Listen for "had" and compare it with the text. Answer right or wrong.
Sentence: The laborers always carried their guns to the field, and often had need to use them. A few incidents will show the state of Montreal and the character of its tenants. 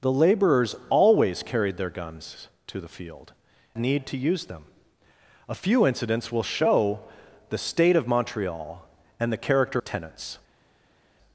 wrong